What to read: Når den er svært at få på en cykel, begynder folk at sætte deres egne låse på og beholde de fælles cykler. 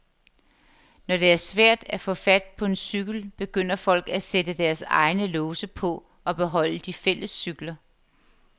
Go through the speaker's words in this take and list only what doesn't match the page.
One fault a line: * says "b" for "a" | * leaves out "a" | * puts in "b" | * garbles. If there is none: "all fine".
* says "det" for "den"
* puts in "fat"